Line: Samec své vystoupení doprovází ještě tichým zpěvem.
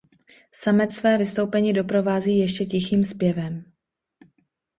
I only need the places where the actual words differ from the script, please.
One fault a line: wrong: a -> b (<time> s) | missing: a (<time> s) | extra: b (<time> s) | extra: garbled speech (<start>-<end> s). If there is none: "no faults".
no faults